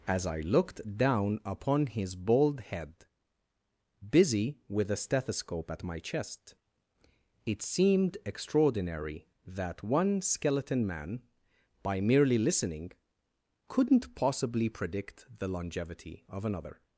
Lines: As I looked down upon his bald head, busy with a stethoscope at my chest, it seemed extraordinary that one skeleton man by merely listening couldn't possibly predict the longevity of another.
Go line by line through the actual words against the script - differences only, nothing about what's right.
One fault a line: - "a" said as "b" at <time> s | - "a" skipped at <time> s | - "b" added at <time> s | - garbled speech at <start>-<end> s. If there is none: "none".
none